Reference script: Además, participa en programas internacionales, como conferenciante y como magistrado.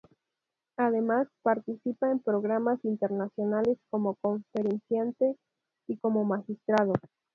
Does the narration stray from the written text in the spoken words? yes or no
no